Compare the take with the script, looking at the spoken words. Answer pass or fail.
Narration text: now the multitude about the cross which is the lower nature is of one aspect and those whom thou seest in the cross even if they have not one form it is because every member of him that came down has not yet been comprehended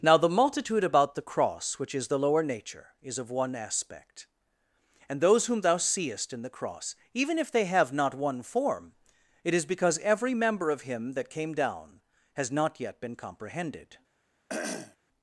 pass